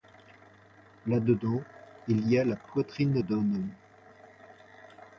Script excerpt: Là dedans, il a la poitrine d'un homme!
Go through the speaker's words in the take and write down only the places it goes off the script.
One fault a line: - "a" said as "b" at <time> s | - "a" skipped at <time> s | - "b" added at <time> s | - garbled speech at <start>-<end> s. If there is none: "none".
- "y" added at 2.3 s